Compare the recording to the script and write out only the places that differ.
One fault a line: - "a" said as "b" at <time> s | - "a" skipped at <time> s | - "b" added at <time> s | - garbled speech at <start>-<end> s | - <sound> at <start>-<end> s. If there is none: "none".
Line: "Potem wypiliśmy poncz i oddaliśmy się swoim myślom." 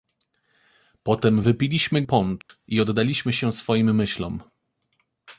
- dropout at 2.4-2.5 s